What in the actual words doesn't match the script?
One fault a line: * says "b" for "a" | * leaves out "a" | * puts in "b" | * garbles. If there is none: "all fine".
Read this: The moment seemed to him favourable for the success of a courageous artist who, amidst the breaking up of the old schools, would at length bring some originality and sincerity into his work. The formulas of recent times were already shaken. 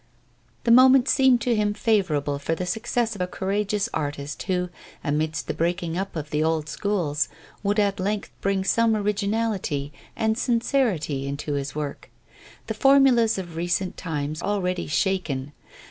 * leaves out "were"